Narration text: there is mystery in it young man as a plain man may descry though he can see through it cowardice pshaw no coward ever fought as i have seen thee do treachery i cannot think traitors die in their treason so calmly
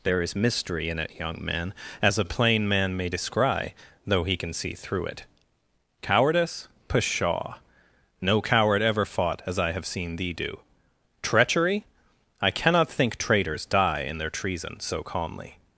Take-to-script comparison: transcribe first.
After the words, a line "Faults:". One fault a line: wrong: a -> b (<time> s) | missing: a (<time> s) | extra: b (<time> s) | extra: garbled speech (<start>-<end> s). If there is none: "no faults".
there is mystery in it young man as a plain man may descry though he can see through it cowardice pshaw no coward ever fought as i have seen thee do treachery i cannot think traitors die in their treason so calmly
Faults:
no faults